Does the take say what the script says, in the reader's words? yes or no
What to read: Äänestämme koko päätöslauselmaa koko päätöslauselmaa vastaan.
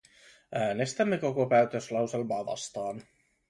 no